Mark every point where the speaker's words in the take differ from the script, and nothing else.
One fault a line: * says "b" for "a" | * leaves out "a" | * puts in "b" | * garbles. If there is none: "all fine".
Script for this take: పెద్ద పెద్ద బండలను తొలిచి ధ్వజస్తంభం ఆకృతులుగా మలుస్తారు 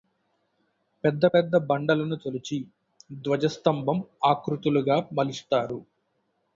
all fine